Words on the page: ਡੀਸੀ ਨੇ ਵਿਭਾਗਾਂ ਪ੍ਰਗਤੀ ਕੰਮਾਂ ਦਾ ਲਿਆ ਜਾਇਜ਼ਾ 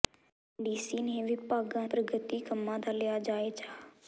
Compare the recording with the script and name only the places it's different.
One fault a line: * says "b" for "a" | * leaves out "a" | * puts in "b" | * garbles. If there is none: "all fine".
all fine